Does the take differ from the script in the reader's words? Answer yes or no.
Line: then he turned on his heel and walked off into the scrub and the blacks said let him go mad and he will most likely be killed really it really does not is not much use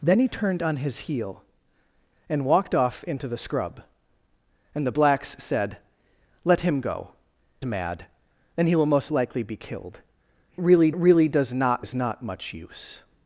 no